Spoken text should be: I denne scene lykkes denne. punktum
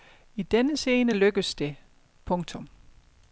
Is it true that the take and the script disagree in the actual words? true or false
true